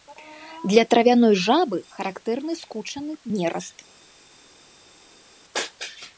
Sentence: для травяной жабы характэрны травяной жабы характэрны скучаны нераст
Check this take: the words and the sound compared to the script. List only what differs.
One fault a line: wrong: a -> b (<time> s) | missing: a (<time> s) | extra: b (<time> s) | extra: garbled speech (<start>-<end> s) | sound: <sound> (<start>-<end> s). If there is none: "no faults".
missing: травяной жабы характэрны (2.5 s)